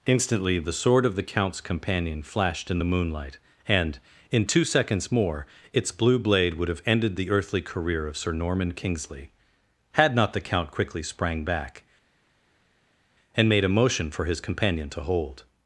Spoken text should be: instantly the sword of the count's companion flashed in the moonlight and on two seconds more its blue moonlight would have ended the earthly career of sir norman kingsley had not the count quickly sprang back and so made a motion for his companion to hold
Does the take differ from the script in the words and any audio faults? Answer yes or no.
yes